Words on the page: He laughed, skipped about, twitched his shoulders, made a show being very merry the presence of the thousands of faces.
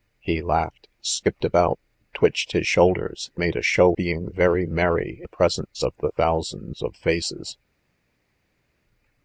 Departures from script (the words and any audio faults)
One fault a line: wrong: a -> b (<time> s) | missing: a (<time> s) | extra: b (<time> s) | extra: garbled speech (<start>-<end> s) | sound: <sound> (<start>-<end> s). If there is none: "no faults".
no faults